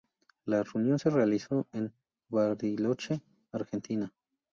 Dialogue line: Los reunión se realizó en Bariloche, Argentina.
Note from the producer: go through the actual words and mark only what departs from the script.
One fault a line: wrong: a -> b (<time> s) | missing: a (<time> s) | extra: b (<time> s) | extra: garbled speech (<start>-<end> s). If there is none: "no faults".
wrong: Los -> La (0.5 s)